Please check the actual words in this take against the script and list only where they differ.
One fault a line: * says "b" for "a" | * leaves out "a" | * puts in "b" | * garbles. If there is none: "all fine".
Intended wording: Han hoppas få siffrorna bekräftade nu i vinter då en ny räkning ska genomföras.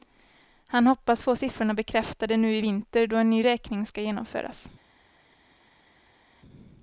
all fine